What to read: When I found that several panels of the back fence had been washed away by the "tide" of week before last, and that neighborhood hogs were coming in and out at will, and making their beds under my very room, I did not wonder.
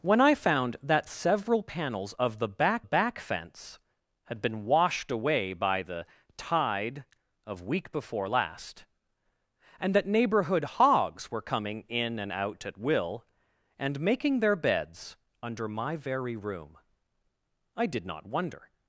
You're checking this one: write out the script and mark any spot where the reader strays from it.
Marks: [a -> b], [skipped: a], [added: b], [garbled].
When I found that several panels of the back [added: back] fence had been washed away by the "tide" of week before last, and that neighborhood hogs were coming in and out at will, and making their beds under my very room, I did not wonder.